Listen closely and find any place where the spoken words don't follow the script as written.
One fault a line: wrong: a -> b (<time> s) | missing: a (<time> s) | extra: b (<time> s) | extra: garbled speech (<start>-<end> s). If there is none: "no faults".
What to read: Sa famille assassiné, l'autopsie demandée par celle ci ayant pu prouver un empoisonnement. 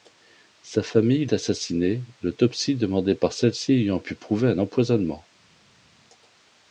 no faults